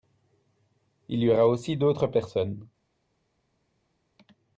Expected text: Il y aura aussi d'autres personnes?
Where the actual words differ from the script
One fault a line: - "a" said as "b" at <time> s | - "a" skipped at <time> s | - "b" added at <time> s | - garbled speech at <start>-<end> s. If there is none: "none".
none